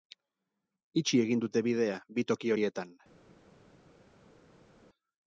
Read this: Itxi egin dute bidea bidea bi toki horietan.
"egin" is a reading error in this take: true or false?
false